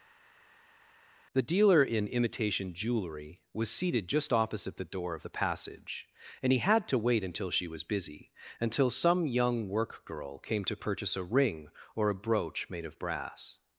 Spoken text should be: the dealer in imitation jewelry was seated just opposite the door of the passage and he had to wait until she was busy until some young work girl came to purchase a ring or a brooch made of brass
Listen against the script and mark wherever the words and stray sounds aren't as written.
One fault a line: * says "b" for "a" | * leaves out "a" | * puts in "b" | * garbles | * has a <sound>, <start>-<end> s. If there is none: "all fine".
all fine